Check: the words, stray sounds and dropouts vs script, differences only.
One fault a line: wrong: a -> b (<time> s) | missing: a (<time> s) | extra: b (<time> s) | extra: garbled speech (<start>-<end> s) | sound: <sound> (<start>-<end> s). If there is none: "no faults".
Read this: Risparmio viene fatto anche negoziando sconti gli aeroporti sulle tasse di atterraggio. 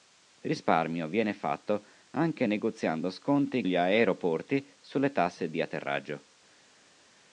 no faults